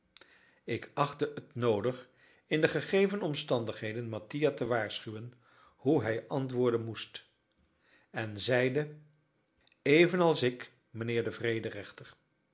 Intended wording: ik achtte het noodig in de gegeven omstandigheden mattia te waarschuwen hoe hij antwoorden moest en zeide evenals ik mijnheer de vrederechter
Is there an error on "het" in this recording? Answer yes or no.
no